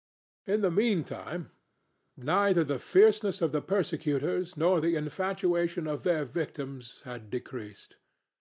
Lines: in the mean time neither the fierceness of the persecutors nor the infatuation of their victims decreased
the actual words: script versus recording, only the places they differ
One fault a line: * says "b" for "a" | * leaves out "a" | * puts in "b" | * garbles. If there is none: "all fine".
* puts in "had"